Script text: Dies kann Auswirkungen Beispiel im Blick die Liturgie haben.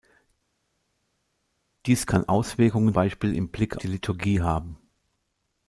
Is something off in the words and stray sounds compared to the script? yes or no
no